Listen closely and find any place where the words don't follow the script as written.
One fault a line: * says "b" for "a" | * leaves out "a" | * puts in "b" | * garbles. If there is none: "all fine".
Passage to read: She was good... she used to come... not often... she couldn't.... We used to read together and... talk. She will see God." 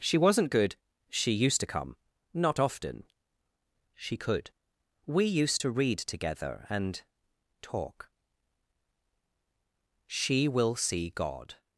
* says "wasn't" for "was"
* says "could" for "couldn't"